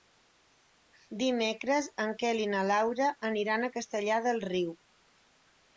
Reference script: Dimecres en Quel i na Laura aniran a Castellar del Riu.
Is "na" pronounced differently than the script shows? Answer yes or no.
no